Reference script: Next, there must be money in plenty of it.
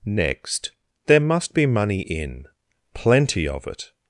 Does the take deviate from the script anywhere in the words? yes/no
no